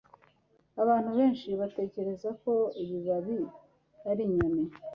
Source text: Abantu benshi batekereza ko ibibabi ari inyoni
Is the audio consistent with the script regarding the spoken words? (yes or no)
yes